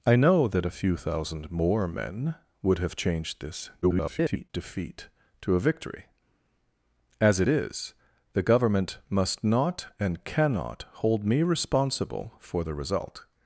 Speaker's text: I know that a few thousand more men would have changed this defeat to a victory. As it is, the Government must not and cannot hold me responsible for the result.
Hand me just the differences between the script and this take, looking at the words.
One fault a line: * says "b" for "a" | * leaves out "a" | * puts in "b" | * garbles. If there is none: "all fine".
* garbles